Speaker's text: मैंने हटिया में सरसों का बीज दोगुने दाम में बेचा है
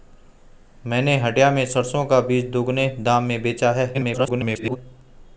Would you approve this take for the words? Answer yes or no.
no